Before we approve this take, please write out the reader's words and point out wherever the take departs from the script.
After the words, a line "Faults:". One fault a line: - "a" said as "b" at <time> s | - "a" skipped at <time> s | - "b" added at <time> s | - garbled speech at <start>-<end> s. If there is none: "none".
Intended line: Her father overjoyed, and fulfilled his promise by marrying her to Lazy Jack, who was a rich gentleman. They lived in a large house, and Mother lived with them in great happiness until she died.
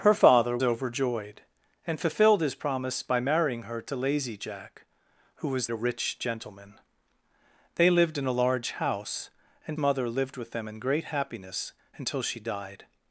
Her father overjoyed, and fulfilled his promise by marrying her to Lazy Jack, who was a rich gentleman. They lived in a large house, and Mother lived with them in great happiness until she died.
Faults:
none